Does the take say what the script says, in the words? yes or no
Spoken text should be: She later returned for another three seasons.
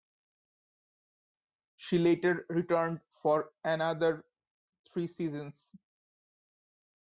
yes